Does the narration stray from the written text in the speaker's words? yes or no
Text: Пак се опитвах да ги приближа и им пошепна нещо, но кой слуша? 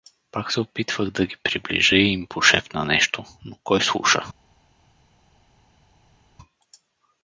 no